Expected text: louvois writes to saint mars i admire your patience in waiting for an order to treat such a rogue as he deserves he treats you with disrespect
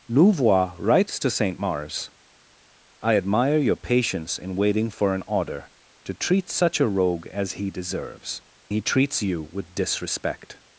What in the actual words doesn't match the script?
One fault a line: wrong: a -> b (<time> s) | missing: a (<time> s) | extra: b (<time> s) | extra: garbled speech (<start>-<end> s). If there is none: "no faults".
no faults